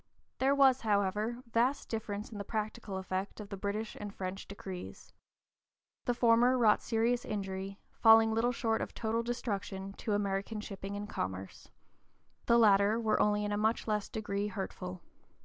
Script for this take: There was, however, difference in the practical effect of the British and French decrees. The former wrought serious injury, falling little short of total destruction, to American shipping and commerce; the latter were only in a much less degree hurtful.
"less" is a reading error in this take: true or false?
false